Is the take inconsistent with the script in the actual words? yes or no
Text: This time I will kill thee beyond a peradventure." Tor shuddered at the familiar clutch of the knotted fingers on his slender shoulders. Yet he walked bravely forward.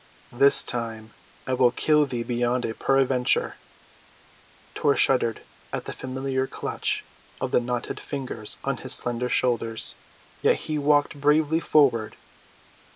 no